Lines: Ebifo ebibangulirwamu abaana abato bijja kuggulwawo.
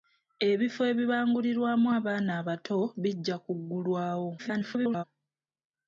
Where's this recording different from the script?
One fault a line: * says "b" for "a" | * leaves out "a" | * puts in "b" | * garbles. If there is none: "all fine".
* garbles